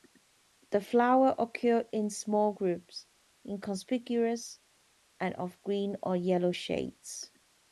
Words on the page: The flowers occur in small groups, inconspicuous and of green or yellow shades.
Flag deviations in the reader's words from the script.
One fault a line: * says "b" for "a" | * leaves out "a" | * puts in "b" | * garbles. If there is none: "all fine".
all fine